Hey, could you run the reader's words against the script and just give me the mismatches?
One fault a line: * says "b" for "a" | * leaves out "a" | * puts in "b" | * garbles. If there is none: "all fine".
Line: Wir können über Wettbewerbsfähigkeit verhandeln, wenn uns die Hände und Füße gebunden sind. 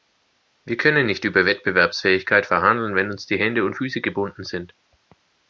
* puts in "nicht"